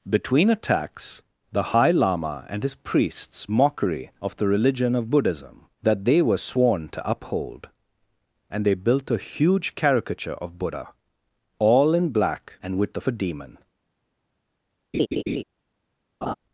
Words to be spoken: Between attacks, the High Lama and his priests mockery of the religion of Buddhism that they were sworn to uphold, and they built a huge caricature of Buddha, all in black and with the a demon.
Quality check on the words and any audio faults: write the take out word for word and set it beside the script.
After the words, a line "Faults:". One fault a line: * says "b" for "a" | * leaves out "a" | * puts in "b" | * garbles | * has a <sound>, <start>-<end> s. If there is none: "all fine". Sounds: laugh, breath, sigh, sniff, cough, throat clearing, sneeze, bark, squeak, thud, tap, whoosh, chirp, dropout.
Between attacks, the High Lama and his priests mockery of the religion of Buddhism that they were sworn to uphold, and they built a huge caricature of Buddha, all in black and with the a demon.
Faults:
* has a laugh, 14.9-15.4 s
* has a laugh, 16.2-16.3 s